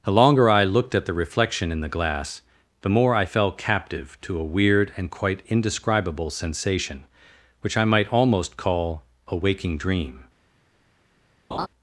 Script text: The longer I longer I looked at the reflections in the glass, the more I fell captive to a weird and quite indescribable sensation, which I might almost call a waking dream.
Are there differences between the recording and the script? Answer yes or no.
yes